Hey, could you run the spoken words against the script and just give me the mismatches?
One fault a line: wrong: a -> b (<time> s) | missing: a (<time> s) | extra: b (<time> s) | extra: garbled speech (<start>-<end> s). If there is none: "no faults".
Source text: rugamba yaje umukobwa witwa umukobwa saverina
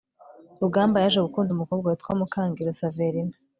extra: gukunda (1.2 s)
wrong: umukobwa -> mukangiro (2.2 s)